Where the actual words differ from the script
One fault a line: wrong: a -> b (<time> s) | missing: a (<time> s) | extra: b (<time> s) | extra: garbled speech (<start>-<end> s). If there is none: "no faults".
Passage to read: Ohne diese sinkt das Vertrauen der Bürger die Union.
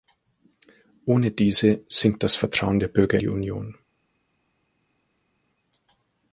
no faults